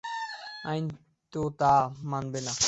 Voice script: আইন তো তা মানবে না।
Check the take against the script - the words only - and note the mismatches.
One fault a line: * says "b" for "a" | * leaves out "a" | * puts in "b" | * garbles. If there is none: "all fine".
all fine